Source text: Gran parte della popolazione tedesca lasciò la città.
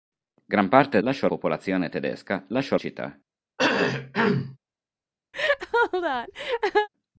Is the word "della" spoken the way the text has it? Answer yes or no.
no